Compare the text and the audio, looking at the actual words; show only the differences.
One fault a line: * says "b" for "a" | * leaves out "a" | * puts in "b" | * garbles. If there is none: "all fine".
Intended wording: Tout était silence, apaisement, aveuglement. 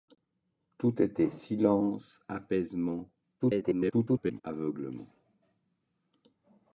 * garbles